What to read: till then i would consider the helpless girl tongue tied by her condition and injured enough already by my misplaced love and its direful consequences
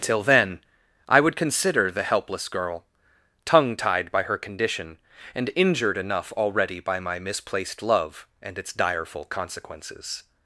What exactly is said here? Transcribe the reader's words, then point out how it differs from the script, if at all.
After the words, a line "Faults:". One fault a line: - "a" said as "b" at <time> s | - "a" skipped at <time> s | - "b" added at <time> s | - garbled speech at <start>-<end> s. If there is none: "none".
till then i would consider the helpless girl tongue tied by her condition and injured enough already by my misplaced love and its direful consequences
Faults:
none